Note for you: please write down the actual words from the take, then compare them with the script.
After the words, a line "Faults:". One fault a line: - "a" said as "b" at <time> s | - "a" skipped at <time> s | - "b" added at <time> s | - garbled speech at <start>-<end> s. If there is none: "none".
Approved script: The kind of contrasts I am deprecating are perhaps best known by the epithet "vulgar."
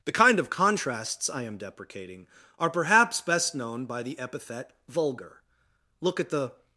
The kind of contrasts I am deprecating are perhaps best known by the epithet "vulgar." Look at the
Faults:
- "Look at the" added at 6.0 s